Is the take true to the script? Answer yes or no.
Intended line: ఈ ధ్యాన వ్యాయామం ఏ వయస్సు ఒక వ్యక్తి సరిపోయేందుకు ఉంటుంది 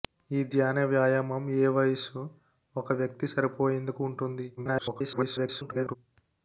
no